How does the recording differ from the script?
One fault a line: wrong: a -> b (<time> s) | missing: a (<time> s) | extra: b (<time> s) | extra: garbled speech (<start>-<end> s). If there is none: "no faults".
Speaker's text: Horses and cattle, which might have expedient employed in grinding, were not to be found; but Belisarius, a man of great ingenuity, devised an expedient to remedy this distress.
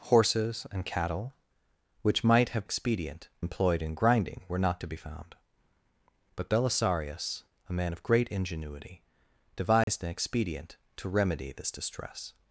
no faults